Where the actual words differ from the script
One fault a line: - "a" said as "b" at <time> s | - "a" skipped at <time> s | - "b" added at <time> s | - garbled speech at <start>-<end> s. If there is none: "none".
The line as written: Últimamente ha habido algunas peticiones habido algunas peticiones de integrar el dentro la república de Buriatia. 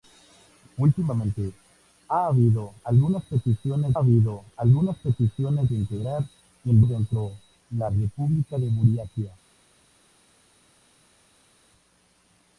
none